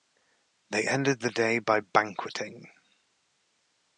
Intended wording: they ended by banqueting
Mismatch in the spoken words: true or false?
true